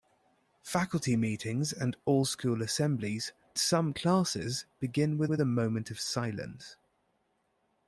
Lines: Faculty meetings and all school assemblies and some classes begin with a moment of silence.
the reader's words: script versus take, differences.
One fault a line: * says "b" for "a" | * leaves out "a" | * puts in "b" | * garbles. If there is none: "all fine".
* leaves out "and"
* puts in "with"